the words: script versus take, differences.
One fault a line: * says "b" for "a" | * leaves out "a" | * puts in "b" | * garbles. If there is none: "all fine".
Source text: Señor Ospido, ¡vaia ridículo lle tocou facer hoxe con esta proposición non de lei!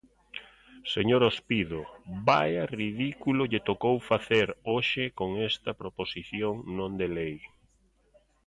all fine